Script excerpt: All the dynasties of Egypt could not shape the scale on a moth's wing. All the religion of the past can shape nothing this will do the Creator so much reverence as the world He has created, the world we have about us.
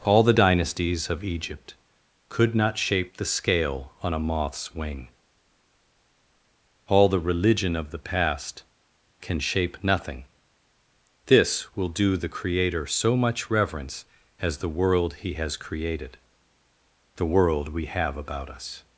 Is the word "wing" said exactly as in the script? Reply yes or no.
yes